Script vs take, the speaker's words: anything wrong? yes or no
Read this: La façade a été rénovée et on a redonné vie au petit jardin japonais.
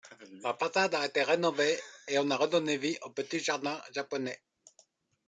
no